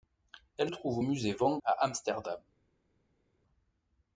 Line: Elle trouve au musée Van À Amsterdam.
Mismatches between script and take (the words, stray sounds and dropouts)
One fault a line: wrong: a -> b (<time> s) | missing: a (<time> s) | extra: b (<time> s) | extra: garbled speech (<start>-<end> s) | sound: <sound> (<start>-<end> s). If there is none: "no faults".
no faults